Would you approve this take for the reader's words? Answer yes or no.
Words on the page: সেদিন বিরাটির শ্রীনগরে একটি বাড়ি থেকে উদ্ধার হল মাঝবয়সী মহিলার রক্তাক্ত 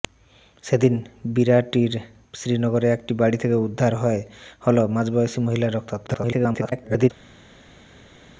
no